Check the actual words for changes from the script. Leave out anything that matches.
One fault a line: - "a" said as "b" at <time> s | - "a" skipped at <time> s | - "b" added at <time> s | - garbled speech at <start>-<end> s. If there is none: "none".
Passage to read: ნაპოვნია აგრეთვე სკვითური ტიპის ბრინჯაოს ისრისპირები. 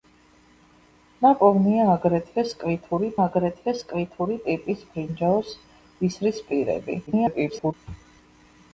- "აგრეთვე სკვითური" added at 3.3 s
- garbled speech at 7.1-7.7 s